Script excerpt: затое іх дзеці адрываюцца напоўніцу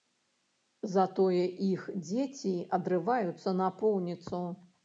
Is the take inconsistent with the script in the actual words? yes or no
no